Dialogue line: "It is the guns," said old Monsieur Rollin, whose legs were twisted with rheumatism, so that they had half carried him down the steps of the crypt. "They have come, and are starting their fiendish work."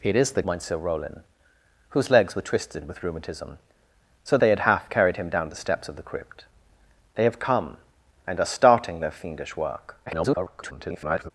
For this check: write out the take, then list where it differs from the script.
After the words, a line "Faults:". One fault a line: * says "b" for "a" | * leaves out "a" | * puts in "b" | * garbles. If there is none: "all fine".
"It is the Monsieur Rollin, whose legs were twisted with rheumatism, so they had half carried him down the steps of the crypt. "They have come, and are starting their fiendish work." [garbled]
Faults:
* leaves out "guns said old"
* leaves out "that"
* garbles